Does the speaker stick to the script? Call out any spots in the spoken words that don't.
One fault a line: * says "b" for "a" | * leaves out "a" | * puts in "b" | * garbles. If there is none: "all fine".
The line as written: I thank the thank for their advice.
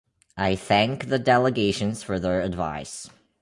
* says "delegations" for "thank"